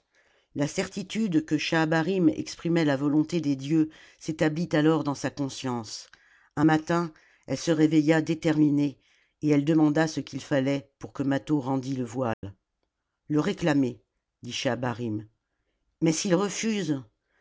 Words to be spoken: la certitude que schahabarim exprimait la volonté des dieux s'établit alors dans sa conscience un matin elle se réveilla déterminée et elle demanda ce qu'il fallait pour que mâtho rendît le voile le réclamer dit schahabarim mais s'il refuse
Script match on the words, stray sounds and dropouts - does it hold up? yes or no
no